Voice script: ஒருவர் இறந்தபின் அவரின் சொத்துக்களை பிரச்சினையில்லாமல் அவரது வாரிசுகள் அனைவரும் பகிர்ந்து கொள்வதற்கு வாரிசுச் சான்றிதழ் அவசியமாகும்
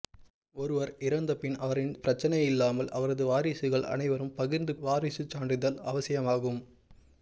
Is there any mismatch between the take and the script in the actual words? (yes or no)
yes